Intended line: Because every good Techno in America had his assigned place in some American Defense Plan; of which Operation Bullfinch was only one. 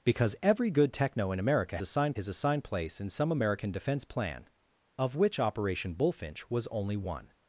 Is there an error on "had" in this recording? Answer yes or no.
yes